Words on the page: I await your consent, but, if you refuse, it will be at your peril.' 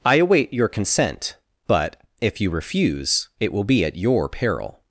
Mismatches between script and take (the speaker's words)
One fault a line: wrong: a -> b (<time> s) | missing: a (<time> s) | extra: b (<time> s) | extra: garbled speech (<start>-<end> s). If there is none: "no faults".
no faults